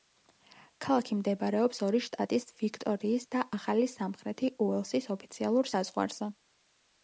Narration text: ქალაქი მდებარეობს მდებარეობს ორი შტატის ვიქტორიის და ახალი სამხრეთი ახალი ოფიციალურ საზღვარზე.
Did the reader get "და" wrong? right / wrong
right